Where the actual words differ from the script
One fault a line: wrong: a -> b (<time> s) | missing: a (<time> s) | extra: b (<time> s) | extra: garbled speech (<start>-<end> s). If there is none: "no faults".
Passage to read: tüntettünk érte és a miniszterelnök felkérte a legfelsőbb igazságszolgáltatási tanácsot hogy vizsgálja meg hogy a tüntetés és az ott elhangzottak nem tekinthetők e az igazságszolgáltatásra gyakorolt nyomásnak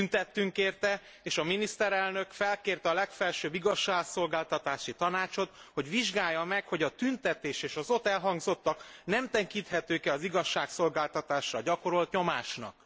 no faults